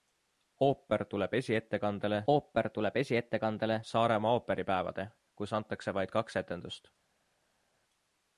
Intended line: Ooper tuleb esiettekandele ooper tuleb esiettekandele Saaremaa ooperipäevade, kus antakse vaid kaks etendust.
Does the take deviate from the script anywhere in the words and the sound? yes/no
no